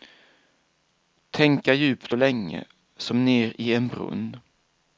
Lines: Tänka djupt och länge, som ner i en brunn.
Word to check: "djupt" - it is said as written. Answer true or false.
true